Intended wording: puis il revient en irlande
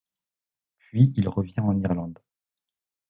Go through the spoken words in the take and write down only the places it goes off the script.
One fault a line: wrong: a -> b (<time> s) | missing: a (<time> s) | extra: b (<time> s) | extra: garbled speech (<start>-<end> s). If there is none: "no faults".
no faults